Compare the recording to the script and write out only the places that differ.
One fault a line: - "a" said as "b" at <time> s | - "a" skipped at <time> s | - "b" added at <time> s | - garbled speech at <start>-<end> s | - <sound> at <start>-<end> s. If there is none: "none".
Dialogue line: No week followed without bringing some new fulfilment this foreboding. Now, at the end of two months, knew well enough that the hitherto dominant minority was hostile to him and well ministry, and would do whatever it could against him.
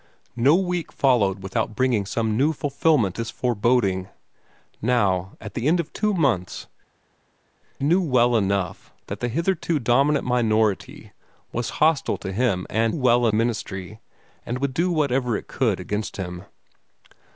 none